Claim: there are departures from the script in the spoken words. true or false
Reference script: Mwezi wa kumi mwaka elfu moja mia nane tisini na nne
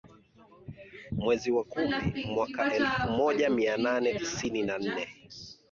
false